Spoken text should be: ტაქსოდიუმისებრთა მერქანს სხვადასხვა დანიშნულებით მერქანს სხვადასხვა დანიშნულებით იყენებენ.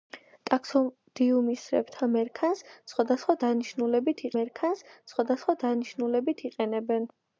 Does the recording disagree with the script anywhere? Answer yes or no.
no